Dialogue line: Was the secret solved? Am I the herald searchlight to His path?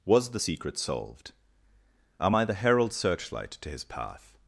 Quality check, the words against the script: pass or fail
pass